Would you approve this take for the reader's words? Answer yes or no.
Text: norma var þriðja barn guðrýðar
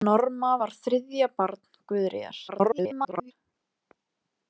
no